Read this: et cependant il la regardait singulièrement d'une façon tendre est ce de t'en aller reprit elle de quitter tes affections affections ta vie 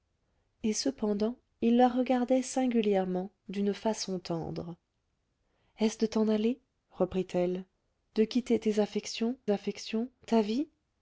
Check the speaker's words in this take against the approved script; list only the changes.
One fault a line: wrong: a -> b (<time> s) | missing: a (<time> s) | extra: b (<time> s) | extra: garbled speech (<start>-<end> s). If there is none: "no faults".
no faults